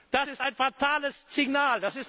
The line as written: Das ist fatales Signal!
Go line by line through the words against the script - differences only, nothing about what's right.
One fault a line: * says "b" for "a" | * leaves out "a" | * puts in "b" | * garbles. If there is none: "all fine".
* puts in "ein"